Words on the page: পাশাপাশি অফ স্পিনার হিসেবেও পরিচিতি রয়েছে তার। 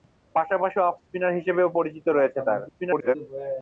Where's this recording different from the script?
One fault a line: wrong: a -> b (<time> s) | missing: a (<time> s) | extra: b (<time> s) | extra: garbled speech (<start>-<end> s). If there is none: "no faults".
extra: garbled speech (2.7-3.2 s)